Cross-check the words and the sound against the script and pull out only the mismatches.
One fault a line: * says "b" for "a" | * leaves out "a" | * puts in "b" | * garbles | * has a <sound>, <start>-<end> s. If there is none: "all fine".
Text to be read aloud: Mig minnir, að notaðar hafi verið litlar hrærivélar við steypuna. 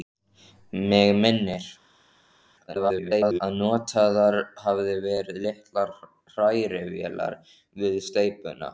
* garbles